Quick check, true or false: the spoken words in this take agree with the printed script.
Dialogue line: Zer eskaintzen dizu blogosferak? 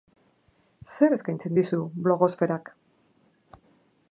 true